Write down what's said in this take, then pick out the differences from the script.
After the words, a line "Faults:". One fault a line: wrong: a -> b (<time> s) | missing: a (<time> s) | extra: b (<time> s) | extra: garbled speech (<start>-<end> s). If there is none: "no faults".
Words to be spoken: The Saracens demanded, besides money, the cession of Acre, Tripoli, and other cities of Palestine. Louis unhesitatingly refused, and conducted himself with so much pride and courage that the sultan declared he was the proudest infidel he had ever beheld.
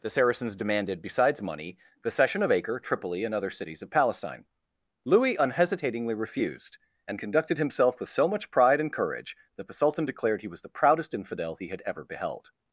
The Saracens demanded, besides money, the cession of Acre, Tripoli, and other cities of Palestine. Louis unhesitatingly refused, and conducted himself with so much pride and courage that the sultan declared he was the proudest infidel he had ever beheld.
Faults:
no faults